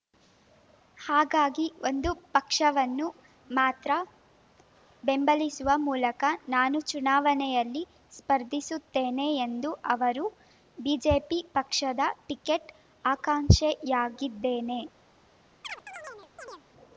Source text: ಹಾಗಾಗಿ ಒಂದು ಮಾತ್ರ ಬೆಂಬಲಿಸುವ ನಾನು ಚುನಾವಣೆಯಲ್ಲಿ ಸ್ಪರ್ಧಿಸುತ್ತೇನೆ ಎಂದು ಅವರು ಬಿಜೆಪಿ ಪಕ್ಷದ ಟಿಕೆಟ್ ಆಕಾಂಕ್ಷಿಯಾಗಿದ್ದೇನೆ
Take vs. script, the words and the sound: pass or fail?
fail